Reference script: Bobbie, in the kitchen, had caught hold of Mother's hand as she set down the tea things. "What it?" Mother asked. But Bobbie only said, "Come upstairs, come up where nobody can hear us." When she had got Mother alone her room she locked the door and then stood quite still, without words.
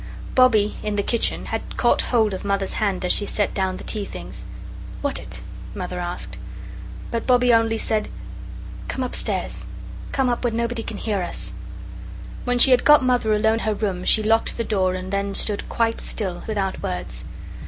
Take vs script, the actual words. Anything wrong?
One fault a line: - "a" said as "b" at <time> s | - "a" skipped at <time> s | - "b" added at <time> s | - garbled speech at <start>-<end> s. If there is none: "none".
none